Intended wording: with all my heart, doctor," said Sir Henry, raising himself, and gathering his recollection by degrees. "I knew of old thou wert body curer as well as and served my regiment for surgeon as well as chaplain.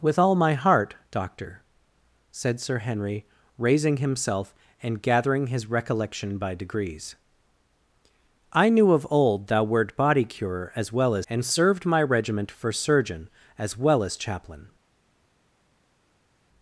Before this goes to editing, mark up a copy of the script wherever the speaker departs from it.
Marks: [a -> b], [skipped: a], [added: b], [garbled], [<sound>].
with all my heart, doctor," said Sir Henry, raising himself, and gathering his recollection by degrees. "I knew of old thou wert body curer as well as and served my regiment for surgeon as well as chaplain.